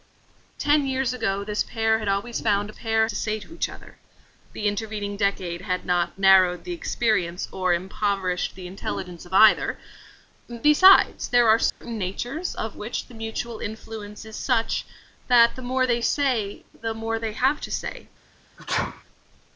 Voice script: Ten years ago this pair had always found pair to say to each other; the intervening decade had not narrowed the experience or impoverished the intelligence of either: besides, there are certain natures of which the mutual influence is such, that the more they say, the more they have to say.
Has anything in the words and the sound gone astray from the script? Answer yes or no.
yes